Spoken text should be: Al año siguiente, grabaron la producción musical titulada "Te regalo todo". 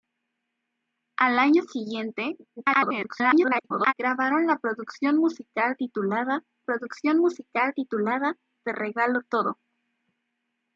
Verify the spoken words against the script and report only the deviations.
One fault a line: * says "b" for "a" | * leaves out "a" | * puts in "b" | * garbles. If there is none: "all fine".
* garbles
* puts in "producción musical titulada"